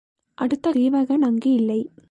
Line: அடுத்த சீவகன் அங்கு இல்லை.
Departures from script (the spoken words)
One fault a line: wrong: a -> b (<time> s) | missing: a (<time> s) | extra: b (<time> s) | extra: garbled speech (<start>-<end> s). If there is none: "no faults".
no faults